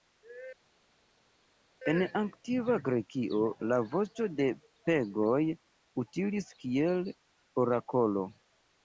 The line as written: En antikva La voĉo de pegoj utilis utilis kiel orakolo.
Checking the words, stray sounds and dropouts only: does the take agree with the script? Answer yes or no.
no